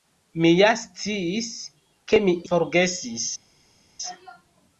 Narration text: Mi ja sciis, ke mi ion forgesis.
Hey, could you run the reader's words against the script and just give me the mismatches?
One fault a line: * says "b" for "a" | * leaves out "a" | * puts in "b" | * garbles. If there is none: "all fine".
* leaves out "ion"